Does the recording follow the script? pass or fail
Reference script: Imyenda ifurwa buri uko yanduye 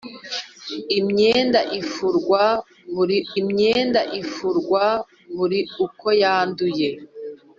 fail